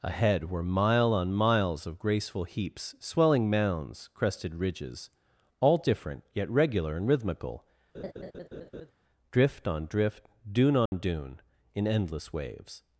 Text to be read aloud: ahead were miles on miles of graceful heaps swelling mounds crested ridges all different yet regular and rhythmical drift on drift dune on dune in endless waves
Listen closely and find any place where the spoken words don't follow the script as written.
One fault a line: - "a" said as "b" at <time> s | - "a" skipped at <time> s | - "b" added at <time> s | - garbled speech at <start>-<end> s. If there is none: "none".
- "miles" said as "mile" at 0.6 s